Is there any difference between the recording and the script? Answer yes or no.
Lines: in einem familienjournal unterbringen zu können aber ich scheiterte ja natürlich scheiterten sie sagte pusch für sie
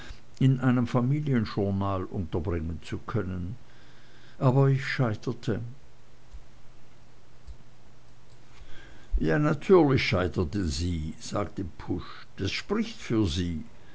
yes